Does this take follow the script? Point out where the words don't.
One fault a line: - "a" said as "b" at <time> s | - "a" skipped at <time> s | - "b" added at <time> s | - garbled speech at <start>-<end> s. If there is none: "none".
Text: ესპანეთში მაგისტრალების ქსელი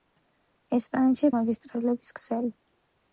none